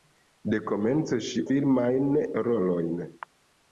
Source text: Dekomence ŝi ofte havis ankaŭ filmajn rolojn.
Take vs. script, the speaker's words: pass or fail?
fail